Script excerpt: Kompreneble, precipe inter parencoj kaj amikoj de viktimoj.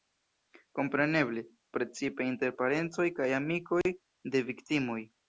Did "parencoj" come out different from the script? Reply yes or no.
no